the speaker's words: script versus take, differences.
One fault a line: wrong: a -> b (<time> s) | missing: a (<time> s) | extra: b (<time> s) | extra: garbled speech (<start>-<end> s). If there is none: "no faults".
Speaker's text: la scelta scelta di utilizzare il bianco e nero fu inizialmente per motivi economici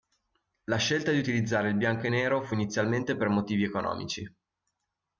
missing: scelta (1.1 s)